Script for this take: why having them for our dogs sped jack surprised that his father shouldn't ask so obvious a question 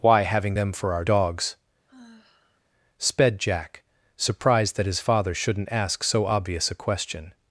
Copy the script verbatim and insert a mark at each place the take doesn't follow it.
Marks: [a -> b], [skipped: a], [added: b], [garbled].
why having them for our dogs sped jack surprised that his father shouldn't ask so obvious a question